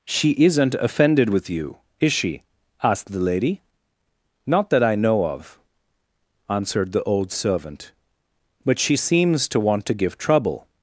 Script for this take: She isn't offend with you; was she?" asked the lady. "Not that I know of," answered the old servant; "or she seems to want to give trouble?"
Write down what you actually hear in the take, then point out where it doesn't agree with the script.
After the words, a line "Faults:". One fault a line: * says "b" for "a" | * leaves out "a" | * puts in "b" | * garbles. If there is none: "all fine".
She isn't offended with you; is she?" asked the lady. "Not that I know of," answered the old servant; "but she seems to want to give trouble?"
Faults:
* says "offended" for "offend"
* says "is" for "was"
* says "but" for "or"